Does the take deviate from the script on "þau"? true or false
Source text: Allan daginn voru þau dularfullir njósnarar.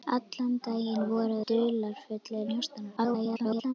true